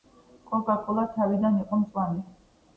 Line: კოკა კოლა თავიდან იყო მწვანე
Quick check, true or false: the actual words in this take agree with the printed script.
true